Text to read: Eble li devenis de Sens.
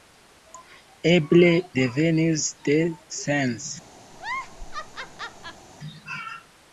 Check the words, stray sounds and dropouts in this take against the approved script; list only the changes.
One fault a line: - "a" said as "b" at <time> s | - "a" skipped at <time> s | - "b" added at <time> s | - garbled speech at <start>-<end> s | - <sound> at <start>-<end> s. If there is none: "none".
- "li" skipped at 1.5 s
- laugh at 4.1-5.7 s